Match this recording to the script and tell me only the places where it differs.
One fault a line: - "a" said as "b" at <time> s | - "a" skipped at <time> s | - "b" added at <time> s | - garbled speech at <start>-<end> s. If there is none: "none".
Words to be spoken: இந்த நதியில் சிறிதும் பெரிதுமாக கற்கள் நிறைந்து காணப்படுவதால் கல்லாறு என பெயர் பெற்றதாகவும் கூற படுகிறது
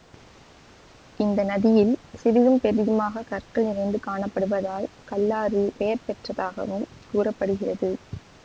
- "என" skipped at 5.6 s